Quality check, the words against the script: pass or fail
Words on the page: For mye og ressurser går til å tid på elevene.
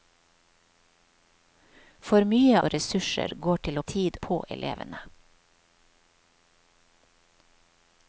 pass